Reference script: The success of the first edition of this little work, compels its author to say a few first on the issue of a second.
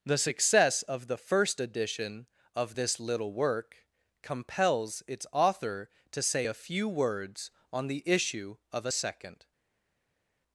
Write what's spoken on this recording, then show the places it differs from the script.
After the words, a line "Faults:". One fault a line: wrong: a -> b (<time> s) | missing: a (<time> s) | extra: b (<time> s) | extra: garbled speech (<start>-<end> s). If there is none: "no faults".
The success of the first edition of this little work, compels its author to say a few words on the issue of a second.
Faults:
wrong: first -> words (6.9 s)